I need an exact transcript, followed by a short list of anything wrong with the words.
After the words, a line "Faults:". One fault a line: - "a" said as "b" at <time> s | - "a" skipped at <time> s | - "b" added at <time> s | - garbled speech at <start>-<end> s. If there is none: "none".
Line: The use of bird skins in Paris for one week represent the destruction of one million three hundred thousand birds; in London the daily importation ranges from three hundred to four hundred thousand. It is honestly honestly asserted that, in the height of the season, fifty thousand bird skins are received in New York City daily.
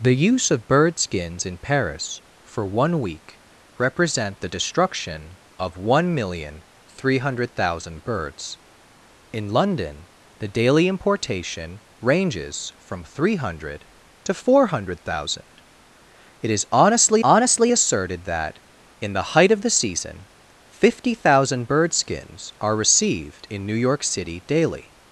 The use of bird skins in Paris for one week represent the destruction of one million three hundred thousand birds; in London the daily importation ranges from three hundred to four hundred thousand. It is honestly honestly asserted that, in the height of the season, fifty thousand bird skins are received in New York City daily.
Faults:
none